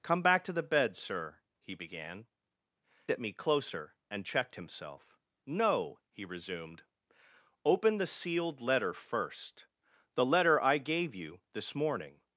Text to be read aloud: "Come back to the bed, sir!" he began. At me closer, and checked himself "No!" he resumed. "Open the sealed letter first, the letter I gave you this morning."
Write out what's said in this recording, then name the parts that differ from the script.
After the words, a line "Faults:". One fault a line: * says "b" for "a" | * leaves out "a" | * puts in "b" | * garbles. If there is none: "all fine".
"Come back to the bed, sir!" he began. At me closer, and checked himself "No!" he resumed. "Open the sealed letter first, the letter I gave you this morning."
Faults:
all fine